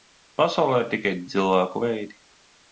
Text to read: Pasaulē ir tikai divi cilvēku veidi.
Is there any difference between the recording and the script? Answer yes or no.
yes